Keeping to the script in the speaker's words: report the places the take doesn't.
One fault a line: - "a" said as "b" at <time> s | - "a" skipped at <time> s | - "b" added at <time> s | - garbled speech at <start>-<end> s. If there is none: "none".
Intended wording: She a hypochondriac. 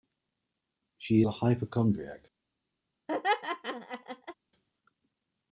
none